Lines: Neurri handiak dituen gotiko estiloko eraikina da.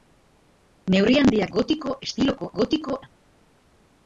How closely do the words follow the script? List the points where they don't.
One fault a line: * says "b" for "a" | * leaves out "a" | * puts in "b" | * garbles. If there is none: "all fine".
* leaves out "dituen"
* says "gotiko" for "eraikina"